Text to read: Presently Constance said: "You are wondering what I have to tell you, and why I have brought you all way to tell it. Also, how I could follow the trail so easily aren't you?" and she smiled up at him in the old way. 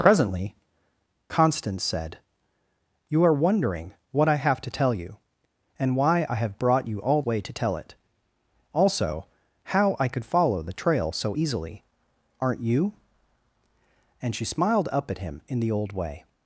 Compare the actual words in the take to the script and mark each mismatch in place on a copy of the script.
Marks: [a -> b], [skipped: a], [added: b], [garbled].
Presently Constance said: "You are wondering what I have to tell you, and why I have brought you all way to tell it. Also, how I could follow the trail so easily aren't you?" and she smiled up at him in the old way.